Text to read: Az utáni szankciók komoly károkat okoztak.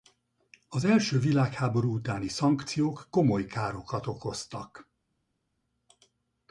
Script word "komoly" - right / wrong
right